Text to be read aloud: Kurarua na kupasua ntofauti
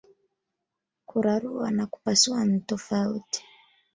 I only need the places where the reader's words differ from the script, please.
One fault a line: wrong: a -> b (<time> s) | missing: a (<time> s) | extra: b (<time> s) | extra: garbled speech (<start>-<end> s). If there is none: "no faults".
no faults